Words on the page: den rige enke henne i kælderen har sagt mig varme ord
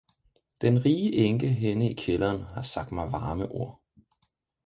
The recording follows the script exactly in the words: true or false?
true